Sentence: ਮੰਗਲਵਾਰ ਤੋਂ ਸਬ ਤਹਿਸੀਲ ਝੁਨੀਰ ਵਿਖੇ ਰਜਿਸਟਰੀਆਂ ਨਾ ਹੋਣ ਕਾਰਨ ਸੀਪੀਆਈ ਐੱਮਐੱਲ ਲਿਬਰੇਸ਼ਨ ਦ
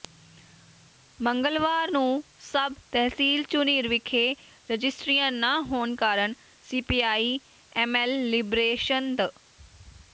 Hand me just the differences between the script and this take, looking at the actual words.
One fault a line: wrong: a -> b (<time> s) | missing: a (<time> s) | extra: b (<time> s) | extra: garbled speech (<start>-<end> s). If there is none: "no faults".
wrong: ਤੋਂ -> ਨੂੰ (1.9 s)